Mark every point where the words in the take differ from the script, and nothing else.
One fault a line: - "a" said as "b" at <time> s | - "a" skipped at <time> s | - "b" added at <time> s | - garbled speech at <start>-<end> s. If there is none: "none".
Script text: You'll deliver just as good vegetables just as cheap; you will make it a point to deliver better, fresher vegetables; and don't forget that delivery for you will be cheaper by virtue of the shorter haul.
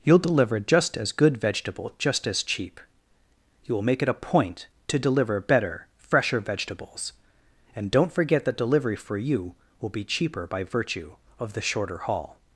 - "vegetables" said as "vegetable" at 1.4 s